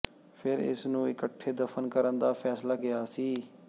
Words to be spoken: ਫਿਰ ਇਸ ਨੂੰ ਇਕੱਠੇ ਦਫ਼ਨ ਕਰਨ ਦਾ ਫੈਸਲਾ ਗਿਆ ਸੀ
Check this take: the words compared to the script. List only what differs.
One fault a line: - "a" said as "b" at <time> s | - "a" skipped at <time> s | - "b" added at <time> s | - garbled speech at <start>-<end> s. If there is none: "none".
none